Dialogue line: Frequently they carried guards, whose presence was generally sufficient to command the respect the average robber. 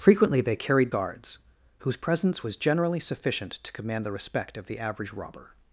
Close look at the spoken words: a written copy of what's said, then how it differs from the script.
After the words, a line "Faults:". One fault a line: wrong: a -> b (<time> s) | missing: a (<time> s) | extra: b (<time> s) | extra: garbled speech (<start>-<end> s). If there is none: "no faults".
Frequently they carried guards, whose presence was generally sufficient to command the respect of the average robber.
Faults:
extra: of (4.6 s)